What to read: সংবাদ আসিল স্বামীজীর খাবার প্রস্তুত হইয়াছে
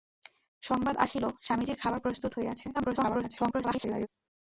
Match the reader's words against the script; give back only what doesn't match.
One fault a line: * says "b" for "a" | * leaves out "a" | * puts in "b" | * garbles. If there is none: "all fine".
* garbles